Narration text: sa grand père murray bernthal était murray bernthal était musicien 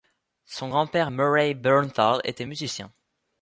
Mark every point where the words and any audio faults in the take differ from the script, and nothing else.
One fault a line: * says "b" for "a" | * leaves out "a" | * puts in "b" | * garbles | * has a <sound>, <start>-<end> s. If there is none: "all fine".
* says "son" for "sa"
* leaves out "murray bernthal était"